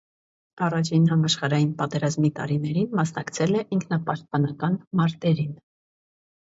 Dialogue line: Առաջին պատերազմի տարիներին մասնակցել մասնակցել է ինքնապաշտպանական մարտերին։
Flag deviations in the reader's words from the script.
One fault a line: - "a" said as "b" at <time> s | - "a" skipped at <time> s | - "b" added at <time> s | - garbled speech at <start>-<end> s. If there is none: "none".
- "համաշխարհային" added at 1.1 s
- "մասնակցել" skipped at 3.6 s